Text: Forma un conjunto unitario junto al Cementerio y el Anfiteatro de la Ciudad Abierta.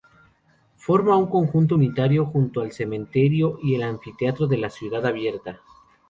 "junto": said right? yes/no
yes